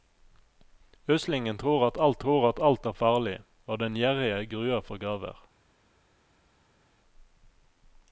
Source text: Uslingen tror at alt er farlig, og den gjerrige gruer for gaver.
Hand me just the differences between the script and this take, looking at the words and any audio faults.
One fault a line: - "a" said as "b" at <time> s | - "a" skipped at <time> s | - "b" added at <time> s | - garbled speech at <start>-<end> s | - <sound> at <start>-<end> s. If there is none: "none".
- "tror at alt" added at 2.2 s